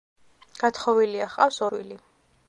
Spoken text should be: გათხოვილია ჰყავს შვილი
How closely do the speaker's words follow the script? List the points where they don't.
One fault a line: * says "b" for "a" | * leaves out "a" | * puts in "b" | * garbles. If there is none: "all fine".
all fine